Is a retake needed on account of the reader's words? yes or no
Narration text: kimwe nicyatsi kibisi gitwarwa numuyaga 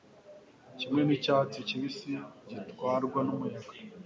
no